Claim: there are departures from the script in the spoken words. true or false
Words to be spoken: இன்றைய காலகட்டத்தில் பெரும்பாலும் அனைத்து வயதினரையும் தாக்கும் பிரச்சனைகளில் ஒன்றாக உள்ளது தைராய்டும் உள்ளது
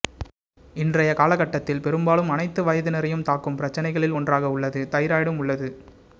false